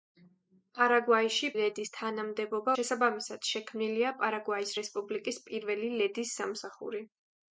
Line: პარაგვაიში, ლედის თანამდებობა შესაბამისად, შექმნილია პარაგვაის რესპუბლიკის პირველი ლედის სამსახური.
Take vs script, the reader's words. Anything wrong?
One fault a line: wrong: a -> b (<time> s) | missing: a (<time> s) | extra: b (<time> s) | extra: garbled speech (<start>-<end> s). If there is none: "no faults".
no faults